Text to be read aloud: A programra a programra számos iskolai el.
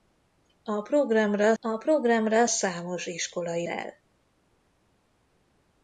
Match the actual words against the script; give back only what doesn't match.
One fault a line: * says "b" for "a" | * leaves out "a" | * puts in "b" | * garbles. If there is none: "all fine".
all fine